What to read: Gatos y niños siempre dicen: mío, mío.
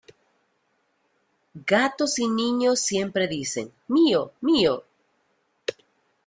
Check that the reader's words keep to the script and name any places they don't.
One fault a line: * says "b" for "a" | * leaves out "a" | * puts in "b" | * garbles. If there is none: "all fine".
all fine